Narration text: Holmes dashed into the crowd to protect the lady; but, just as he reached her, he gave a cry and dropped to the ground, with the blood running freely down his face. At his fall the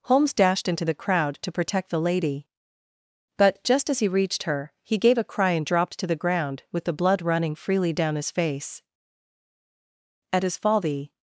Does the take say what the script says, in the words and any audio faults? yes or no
yes